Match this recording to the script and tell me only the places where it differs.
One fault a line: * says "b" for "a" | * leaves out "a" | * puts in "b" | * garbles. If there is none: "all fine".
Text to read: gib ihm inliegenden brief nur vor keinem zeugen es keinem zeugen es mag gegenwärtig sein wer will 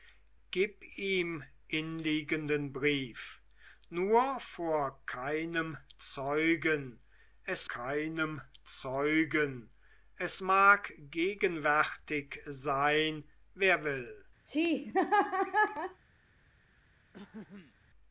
all fine